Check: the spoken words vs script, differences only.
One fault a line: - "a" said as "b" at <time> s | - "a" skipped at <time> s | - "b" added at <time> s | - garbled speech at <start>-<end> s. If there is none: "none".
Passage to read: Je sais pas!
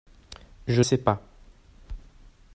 none